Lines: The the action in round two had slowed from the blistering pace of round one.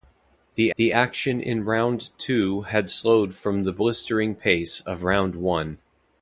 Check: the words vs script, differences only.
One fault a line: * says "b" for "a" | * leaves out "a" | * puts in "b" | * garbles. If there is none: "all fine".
all fine